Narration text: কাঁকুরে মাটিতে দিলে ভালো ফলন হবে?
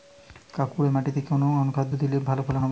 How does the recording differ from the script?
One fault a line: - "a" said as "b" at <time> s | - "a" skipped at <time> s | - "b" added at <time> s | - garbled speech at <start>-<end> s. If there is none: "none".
- "কোন অনুখাদ্য" added at 1.2 s